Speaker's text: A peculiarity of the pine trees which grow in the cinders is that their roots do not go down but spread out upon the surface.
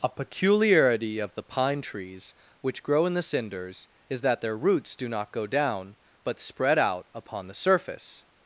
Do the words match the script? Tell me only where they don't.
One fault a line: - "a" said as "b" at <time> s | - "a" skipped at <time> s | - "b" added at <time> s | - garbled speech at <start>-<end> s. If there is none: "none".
none